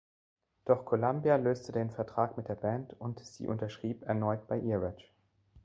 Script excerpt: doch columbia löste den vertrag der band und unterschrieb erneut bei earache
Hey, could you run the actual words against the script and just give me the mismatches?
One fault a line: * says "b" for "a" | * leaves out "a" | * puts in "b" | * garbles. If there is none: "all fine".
* puts in "mit"
* puts in "sie"